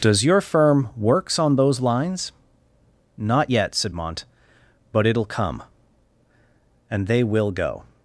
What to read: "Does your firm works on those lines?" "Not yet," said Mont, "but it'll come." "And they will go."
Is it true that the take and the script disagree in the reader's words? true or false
false